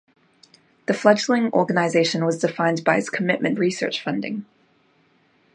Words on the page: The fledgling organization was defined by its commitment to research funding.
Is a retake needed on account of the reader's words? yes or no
yes